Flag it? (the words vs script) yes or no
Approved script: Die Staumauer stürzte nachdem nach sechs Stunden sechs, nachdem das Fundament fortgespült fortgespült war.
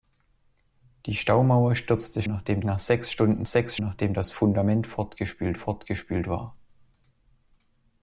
no